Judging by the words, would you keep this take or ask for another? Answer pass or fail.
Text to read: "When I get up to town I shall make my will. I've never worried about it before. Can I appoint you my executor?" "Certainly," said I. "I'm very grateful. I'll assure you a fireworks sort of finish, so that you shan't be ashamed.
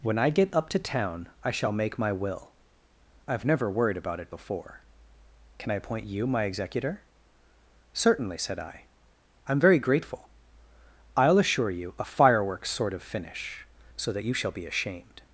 fail